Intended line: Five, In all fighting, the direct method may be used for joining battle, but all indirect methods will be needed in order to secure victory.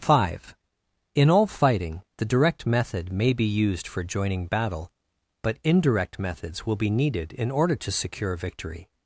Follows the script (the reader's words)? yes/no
no